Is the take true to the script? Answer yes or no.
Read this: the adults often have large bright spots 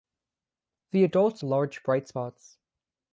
no